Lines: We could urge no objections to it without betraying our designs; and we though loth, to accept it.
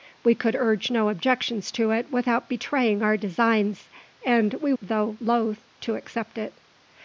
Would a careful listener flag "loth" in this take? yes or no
no